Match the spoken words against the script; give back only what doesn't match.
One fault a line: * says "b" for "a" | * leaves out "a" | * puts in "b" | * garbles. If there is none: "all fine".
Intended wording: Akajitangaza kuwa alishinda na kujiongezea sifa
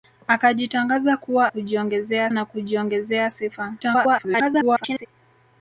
* says "kujiongezea" for "alishinda"
* garbles